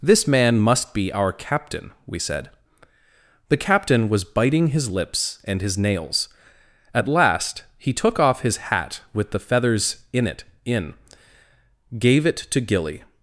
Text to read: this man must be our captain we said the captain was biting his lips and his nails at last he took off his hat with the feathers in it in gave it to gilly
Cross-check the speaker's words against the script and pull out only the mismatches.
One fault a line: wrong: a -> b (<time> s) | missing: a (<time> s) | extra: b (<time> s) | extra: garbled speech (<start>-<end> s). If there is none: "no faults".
no faults